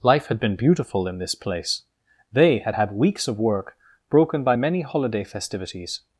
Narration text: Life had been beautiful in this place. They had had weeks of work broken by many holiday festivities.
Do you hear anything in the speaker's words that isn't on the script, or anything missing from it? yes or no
no